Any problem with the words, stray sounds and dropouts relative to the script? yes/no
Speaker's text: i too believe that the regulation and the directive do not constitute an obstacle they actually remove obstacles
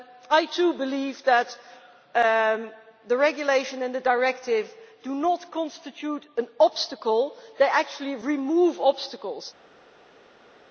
no